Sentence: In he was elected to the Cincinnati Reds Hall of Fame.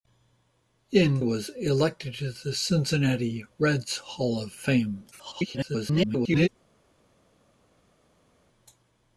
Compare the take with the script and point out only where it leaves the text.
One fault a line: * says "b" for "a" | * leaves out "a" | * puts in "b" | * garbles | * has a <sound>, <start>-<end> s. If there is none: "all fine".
* leaves out "he"
* garbles